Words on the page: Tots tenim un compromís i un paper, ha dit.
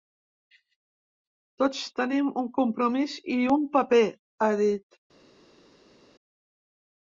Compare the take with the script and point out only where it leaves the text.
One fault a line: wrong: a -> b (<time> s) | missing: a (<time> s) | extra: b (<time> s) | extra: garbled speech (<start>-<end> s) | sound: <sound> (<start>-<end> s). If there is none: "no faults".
no faults